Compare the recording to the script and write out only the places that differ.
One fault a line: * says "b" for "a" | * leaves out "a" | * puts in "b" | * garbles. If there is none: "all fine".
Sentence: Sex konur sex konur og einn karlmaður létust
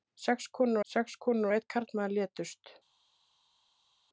all fine